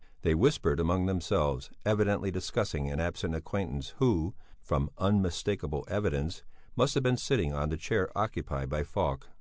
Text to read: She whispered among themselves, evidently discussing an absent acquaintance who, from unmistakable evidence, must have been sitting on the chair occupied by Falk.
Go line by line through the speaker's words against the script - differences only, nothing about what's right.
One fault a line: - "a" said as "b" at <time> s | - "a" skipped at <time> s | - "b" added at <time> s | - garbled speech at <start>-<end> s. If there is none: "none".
- "She" said as "They" at 0.2 s